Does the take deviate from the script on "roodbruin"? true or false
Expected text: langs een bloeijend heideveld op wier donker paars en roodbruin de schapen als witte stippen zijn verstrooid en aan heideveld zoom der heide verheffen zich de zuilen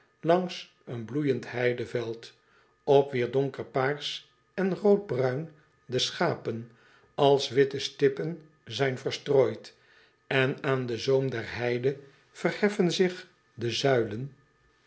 false